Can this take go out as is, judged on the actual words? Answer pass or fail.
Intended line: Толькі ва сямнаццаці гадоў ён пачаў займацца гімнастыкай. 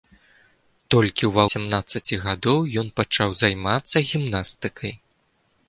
pass